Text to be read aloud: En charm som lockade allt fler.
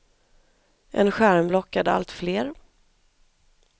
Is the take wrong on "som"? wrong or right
wrong